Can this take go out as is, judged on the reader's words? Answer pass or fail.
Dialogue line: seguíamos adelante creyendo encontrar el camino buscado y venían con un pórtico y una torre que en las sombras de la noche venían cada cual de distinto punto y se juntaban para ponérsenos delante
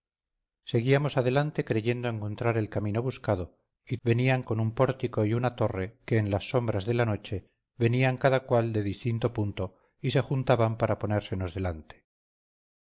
pass